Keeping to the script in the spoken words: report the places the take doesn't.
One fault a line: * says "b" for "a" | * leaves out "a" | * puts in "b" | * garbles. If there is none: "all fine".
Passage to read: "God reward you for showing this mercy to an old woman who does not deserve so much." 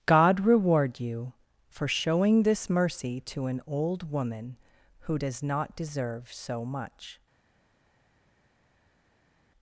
all fine